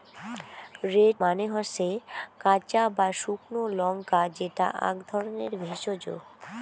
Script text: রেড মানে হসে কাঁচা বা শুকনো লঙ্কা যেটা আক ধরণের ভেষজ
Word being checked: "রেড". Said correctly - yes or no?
yes